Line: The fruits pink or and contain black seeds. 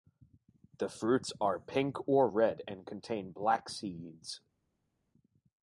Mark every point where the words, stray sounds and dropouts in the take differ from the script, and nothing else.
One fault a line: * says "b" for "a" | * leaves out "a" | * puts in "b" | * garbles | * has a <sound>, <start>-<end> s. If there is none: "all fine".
* puts in "are"
* puts in "red"